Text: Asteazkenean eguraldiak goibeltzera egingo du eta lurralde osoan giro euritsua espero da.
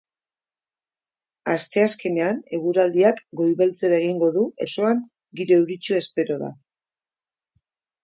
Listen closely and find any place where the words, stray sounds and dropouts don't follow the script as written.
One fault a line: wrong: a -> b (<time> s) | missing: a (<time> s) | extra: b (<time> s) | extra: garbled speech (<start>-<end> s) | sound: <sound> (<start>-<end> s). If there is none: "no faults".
missing: eta lurralde (4.5 s)